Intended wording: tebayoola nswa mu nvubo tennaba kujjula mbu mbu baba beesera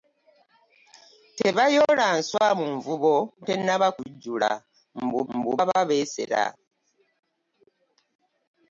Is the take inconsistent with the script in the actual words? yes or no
no